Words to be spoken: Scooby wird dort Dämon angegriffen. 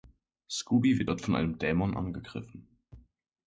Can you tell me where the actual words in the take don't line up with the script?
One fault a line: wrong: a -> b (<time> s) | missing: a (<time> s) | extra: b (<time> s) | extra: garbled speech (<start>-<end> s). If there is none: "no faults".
extra: von einem (1.2 s)